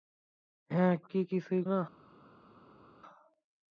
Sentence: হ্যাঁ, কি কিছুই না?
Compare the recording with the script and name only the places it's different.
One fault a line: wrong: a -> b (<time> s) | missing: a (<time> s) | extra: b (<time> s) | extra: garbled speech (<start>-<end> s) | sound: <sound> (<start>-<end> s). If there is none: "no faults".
no faults